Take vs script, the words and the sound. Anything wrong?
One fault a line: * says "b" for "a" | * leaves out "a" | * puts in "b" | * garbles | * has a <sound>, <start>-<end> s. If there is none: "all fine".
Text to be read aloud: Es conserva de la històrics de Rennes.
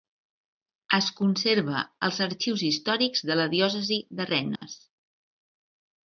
* puts in "als Arxius històrics"
* says "diòcesi" for "històrics"
* has a dropout, 4.6-4.6 s